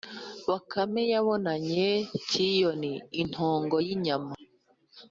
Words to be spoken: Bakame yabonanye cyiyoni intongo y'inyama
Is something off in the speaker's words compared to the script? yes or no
no